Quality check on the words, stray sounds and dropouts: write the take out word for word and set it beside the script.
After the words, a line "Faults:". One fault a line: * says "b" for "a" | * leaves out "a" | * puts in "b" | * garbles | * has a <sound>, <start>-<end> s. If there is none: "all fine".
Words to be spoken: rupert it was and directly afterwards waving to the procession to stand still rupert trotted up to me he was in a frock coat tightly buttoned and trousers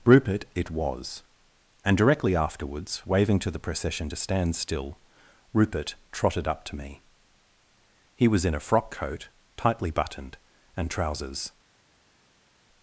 rupert it was and directly afterwards waving to the procession to stand still rupert trotted up to me he was in a frock coat tightly buttoned and trousers
Faults:
all fine